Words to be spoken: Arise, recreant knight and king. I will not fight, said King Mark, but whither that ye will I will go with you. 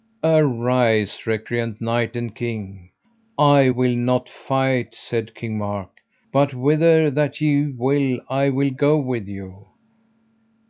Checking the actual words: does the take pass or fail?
pass